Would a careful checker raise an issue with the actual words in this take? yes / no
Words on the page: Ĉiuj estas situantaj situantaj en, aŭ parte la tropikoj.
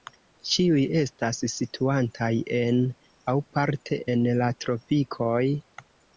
yes